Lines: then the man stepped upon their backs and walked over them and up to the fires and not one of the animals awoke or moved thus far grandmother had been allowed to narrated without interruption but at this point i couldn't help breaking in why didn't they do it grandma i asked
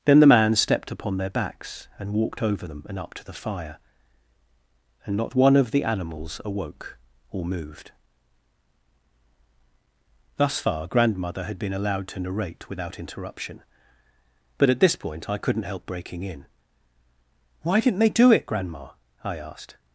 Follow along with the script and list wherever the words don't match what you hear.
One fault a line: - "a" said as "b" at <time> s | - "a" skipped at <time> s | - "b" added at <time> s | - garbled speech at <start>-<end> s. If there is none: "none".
- "fires" said as "fire" at 3.3 s
- "narrated" said as "narrate" at 12.2 s